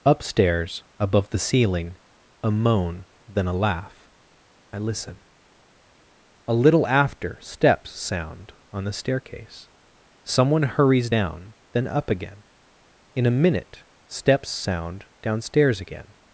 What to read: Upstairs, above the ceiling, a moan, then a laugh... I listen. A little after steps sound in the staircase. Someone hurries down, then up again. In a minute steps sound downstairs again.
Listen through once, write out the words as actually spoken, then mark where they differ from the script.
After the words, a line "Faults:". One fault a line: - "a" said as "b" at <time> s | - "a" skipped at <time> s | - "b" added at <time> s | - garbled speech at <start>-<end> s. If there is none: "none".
Upstairs, above the ceiling, a moan, then a laugh... I listen. A little after steps sound on the staircase. Someone hurries down, then up again. In a minute steps sound downstairs again.
Faults:
- "in" said as "on" at 8.7 s